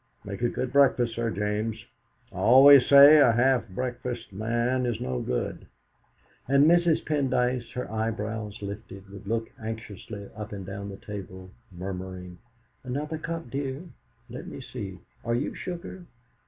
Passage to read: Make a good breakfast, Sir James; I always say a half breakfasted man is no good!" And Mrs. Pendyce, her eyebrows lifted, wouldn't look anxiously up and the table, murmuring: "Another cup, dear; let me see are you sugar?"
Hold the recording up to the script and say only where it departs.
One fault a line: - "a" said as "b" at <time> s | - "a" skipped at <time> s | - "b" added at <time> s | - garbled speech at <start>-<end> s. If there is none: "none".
- "wouldn't" said as "would" at 9.1 s
- "down" added at 10.7 s